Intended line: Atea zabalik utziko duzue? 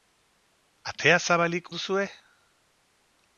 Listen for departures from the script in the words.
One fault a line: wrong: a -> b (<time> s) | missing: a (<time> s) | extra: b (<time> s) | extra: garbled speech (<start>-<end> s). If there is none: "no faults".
missing: utziko (1.7 s)